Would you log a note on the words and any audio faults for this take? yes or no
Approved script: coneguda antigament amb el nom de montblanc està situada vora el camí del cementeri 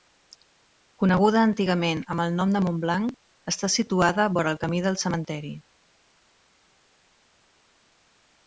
no